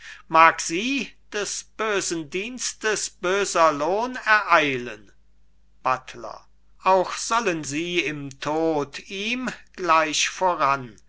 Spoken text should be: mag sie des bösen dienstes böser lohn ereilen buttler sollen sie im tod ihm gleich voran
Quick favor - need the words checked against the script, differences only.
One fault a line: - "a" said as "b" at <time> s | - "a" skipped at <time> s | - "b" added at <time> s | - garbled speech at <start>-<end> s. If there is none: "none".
- "auch" added at 6.8 s